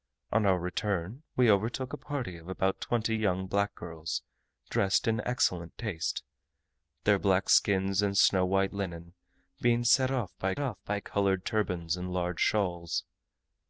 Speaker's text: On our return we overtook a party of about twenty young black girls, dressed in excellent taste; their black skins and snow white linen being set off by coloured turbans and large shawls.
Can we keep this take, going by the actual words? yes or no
no